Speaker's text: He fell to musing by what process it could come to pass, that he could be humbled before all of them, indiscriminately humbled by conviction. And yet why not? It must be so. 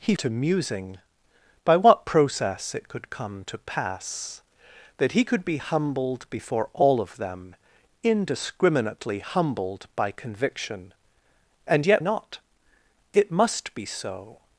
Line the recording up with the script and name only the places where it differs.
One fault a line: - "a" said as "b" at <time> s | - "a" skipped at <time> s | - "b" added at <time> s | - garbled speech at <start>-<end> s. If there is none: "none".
- "fell" skipped at 0.1 s
- "why" skipped at 12.0 s